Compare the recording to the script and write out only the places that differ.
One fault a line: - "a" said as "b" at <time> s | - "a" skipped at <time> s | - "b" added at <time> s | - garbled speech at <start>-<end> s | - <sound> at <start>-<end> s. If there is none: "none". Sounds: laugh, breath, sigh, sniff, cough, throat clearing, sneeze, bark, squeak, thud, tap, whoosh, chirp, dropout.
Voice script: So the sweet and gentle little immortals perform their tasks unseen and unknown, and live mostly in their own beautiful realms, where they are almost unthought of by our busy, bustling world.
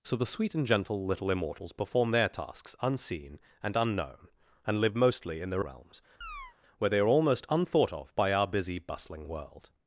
- "own beautiful" skipped at 5.7 s
- chirp at 6.2-6.6 s